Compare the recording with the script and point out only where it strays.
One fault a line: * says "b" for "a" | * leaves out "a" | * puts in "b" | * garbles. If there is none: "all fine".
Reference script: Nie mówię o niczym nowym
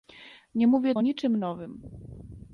all fine